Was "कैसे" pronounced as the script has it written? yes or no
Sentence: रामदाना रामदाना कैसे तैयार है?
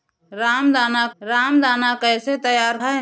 yes